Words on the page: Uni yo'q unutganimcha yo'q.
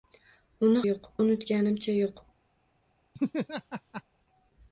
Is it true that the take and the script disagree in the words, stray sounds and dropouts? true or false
true